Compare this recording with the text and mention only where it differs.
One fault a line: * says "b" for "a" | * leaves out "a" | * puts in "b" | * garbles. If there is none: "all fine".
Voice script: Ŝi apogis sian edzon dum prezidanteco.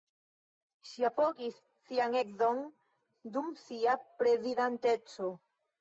* puts in "sia"